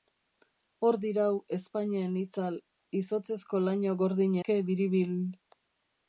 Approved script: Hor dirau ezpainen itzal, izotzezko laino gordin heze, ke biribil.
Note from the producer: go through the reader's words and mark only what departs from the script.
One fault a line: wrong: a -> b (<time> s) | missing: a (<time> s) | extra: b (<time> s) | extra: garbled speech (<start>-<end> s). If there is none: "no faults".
missing: heze (4.4 s)